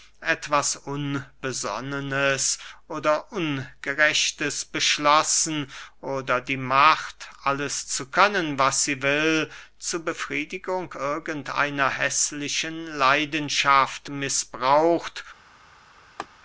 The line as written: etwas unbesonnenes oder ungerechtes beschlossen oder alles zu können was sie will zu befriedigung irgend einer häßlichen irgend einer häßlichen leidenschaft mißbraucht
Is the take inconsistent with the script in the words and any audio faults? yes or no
yes